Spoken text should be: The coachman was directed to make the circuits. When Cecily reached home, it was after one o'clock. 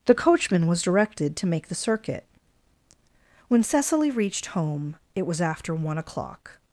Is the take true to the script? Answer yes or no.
no